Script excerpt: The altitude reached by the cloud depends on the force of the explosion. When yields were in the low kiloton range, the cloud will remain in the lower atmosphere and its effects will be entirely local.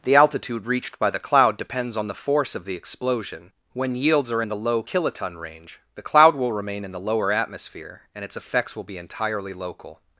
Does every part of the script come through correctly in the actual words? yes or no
no